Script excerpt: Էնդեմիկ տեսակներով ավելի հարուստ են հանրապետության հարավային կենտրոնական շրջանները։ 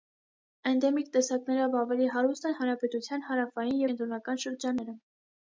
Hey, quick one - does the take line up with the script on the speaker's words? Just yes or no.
yes